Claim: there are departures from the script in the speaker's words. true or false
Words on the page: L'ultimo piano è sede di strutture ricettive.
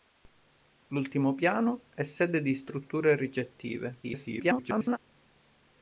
true